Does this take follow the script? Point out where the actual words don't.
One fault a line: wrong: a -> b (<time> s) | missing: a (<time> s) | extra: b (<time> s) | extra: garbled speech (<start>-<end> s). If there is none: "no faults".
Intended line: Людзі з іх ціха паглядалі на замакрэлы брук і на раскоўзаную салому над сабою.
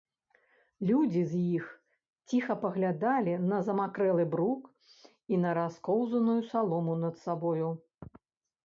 no faults